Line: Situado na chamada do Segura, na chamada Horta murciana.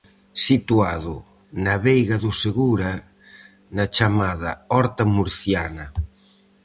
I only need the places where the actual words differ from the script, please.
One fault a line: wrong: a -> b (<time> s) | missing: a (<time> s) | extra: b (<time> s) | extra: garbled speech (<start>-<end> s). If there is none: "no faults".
wrong: chamada -> veiga (1.9 s)